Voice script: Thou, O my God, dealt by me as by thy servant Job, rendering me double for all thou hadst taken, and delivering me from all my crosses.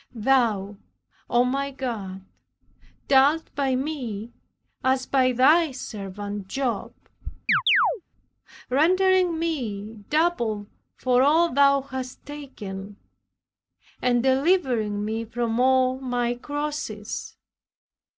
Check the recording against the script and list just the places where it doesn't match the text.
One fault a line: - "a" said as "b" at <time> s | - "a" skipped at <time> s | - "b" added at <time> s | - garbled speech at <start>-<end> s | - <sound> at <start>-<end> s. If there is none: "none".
- chirp at 7.5-8.0 s